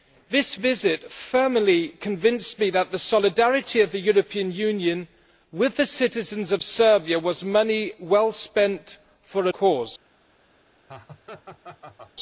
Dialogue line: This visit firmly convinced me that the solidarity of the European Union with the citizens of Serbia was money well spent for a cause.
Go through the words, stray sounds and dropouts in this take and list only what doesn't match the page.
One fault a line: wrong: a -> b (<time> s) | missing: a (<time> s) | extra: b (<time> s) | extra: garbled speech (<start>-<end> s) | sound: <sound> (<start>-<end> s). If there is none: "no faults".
sound: laugh (10.9-12.1 s)